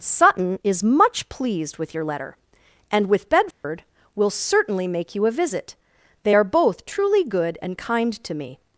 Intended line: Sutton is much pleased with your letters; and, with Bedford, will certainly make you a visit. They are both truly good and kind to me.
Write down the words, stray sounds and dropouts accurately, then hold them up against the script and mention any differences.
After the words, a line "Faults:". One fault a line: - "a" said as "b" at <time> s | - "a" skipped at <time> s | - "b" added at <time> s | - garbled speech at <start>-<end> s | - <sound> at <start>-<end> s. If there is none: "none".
Sutton is much pleased with your letter; and, with Bedford, will certainly make you a visit. They are both truly good and kind to me.
Faults:
- "letters" said as "letter" at 2.0 s
- dropout at 3.5-3.6 s